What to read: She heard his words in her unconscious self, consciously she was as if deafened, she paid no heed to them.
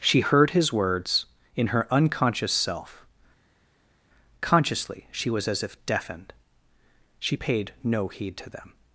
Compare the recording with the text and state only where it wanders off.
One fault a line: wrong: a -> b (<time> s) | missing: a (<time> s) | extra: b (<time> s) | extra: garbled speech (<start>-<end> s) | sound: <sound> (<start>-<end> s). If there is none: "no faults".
no faults